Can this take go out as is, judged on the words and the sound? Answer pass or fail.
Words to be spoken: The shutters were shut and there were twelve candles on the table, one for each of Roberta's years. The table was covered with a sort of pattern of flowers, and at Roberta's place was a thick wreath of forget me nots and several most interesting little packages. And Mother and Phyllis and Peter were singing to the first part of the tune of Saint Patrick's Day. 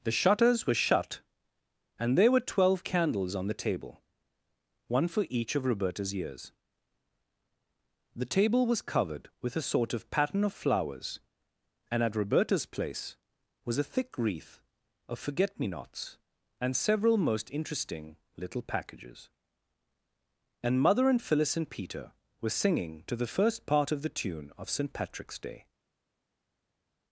pass